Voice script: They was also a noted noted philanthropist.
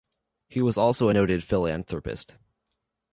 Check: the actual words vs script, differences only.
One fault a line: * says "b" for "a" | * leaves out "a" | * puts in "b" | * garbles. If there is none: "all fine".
* says "He" for "They"
* leaves out "noted"